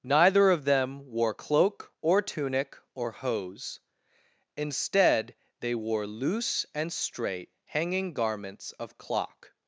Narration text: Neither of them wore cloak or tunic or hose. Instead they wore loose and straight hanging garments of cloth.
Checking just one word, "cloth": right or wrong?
wrong